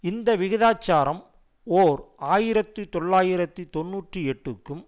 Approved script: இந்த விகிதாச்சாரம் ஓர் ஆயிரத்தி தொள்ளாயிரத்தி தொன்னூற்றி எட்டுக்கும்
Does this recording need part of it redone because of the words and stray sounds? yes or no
no